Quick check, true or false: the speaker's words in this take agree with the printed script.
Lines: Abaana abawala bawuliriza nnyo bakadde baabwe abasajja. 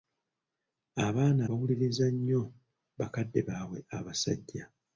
false